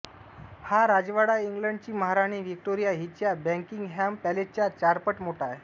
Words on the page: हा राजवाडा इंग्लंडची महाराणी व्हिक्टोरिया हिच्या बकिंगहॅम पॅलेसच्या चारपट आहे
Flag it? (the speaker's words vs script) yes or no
yes